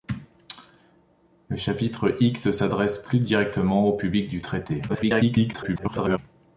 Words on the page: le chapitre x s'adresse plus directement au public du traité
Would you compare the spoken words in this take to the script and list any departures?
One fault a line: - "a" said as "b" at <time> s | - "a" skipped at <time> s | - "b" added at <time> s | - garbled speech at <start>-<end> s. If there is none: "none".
- garbled speech at 4.9-6.2 s